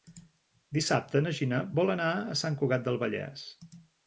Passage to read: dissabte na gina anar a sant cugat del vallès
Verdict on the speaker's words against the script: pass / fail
fail